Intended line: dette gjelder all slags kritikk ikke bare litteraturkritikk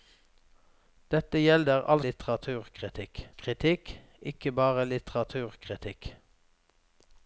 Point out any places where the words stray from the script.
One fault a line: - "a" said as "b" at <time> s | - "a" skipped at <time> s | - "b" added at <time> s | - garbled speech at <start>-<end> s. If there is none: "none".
- "slags" said as "litteraturkritikk" at 2.1 s